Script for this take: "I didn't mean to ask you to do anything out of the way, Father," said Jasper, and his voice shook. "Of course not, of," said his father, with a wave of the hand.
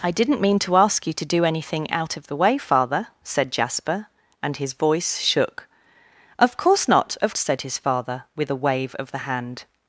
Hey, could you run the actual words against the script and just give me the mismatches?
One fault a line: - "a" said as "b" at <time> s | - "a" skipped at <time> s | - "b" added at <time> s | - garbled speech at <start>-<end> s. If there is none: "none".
none